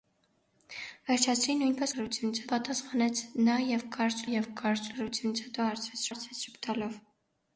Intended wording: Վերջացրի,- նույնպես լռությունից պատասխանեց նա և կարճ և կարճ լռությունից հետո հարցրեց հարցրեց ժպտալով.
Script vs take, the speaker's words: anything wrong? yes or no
no